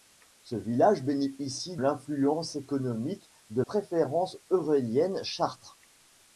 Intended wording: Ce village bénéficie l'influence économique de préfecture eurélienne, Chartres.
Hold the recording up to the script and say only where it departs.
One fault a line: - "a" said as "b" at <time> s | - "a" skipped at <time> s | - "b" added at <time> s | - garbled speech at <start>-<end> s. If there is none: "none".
none